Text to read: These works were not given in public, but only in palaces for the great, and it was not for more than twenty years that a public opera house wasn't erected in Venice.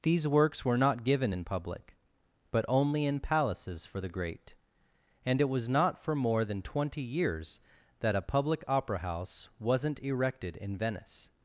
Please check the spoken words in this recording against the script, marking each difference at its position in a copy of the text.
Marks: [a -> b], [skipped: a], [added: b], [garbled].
These works were not given in public, but only in palaces for the great, and it was not for more than twenty years that a public opera house wasn't erected in Venice.